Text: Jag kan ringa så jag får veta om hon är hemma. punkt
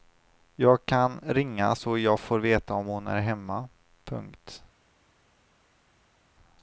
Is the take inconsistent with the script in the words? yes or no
no